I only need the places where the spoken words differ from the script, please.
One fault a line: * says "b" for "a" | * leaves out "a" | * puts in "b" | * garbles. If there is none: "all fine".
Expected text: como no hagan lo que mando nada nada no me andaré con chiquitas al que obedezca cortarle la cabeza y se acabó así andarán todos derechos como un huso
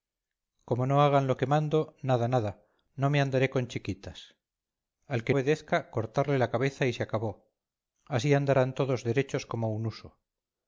all fine